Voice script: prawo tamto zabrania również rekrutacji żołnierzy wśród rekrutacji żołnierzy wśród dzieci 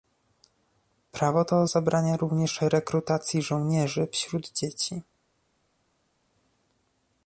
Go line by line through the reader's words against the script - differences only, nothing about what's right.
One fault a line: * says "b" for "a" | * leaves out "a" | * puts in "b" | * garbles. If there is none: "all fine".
* says "to" for "tamto"
* leaves out "rekrutacji żołnierzy wśród"